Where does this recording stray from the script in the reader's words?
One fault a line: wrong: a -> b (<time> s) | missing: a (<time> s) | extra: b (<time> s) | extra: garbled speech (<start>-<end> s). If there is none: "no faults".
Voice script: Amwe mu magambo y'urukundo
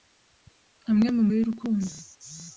missing: magambo (1.2 s)